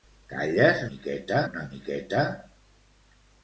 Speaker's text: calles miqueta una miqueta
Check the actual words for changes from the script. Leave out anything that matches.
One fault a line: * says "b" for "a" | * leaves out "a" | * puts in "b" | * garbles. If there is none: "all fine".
all fine